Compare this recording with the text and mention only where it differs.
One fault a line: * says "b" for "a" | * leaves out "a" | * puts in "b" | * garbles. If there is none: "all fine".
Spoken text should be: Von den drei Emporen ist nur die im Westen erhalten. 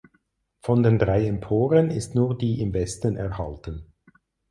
all fine